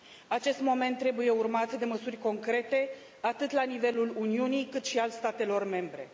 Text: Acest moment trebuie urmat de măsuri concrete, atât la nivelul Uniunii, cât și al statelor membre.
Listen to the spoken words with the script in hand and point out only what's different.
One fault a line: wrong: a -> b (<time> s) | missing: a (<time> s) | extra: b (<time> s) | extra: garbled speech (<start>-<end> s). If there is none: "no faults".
no faults